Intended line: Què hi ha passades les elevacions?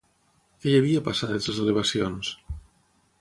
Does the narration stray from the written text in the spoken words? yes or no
yes